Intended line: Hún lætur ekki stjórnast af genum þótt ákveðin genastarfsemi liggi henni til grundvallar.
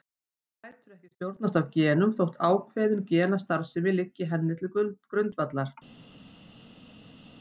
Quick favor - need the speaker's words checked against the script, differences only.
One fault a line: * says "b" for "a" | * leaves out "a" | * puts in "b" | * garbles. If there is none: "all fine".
all fine